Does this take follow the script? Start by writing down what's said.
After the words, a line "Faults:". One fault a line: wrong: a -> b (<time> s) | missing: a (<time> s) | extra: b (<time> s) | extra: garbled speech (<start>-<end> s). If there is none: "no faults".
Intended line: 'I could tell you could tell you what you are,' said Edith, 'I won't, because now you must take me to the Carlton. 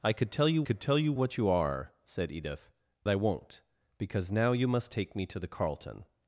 'I could tell you could tell you what you are,' said Edith, 'I won't, because now you must take me to the Carlton.
Faults:
no faults